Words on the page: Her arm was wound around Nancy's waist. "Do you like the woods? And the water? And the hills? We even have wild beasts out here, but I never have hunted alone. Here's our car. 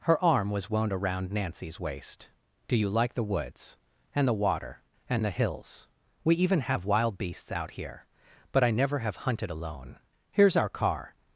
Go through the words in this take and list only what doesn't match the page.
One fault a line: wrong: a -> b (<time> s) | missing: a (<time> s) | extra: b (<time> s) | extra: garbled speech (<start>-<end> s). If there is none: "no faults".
no faults